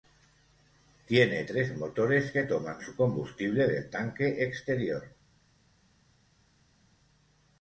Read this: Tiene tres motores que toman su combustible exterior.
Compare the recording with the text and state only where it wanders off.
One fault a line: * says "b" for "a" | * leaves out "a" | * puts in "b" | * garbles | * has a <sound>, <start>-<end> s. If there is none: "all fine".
* puts in "del tanque"